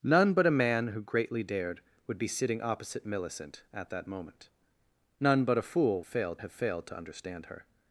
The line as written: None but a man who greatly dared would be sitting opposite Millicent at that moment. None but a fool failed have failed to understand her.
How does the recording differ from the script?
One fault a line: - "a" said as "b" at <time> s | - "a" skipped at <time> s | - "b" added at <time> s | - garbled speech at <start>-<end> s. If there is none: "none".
none